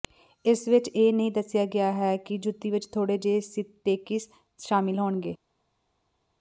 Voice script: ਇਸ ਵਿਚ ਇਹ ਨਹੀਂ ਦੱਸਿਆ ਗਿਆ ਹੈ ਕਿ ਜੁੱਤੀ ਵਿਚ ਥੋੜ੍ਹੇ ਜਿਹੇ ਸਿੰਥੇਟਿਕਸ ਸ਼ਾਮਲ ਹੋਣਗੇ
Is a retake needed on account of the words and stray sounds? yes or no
no